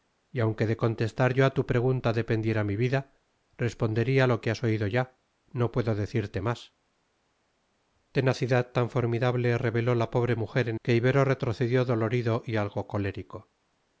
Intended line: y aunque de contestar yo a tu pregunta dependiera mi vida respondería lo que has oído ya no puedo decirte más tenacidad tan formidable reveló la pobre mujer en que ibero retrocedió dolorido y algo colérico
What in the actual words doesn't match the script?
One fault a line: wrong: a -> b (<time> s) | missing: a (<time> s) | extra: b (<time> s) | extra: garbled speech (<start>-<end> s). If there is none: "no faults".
no faults